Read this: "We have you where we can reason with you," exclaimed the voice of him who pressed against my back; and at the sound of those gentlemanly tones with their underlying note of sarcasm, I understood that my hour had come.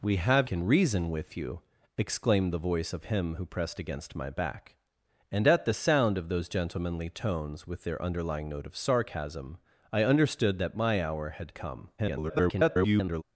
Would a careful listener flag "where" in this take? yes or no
yes